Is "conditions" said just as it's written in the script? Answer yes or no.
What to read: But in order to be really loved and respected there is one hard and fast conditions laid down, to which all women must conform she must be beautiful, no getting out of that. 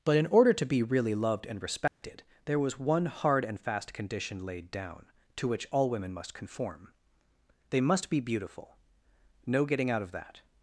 no